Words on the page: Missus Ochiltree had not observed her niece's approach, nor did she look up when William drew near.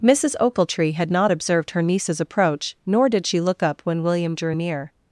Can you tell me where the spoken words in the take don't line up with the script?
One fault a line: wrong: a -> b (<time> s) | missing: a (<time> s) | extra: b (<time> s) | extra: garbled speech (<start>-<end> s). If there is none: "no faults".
no faults